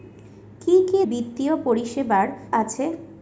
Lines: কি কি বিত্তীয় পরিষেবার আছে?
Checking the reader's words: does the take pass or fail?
pass